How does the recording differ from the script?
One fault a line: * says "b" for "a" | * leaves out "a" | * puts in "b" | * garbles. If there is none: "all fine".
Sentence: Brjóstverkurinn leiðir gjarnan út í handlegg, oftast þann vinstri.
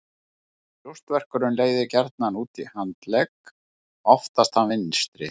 all fine